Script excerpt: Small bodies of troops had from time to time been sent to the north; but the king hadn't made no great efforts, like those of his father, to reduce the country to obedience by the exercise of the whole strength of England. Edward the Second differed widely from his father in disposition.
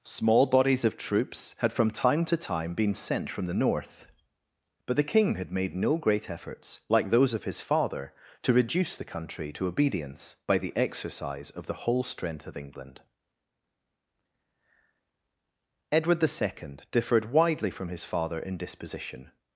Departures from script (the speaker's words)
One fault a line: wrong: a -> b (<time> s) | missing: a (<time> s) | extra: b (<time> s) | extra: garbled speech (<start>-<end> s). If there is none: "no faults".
wrong: to -> from (3.3 s)
wrong: hadn't -> had (5.3 s)